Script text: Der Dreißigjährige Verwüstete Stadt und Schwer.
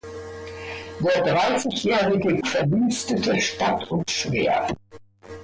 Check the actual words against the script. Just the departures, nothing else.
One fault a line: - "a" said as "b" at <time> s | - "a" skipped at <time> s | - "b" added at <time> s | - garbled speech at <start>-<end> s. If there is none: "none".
none